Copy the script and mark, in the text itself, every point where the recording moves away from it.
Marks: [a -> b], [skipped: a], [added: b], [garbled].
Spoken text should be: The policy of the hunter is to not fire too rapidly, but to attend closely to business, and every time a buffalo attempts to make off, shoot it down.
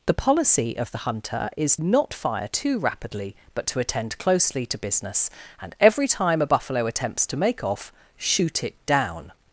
The policy of the hunter is [skipped: to] not fire too rapidly, but to attend closely to business, and every time a buffalo attempts to make off, shoot it down.